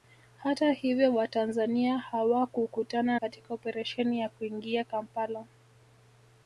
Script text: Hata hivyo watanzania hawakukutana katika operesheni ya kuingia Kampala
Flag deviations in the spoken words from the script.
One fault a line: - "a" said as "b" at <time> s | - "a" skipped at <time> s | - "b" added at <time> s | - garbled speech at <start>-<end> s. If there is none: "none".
none